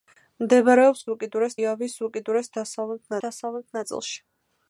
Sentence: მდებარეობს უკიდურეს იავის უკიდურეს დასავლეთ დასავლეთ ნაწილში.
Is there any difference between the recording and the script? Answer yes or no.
no